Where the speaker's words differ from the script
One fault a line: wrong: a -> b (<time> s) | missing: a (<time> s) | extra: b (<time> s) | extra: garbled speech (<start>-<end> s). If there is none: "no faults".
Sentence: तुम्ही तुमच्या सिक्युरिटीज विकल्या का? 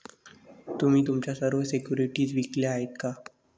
extra: सर्व (1.3 s)
extra: आहेत (2.7 s)